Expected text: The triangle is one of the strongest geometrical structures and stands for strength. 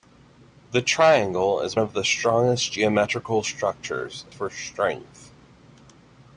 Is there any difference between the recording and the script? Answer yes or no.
yes